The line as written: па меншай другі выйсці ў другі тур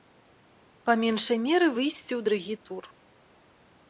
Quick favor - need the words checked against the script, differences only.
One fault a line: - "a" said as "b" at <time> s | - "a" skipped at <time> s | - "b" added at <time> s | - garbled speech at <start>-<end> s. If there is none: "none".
- "другі" said as "меры" at 1.4 s